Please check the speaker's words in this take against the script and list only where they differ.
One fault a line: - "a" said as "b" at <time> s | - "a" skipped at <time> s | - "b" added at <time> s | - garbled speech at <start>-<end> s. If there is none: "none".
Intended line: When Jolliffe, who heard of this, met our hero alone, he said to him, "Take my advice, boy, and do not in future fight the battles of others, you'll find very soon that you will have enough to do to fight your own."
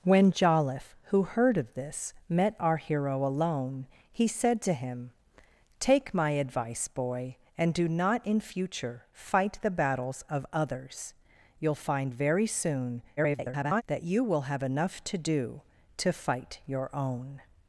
- garbled speech at 13.2-13.8 s